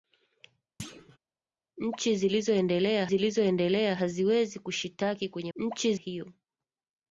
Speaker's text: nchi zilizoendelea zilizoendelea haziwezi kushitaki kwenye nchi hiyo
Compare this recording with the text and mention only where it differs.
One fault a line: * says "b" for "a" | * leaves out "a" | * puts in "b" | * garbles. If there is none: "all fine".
all fine